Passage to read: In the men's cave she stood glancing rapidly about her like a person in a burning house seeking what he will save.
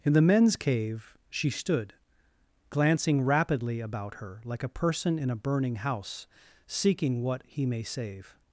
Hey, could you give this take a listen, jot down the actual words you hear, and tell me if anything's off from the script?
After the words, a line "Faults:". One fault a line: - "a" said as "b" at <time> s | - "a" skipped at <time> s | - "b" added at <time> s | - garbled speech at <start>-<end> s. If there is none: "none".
In the men's cave she stood glancing rapidly about her like a person in a burning house seeking what he may save.
Faults:
- "will" said as "may" at 7.6 s